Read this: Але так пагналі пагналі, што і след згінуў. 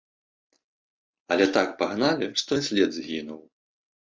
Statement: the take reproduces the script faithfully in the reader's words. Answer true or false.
false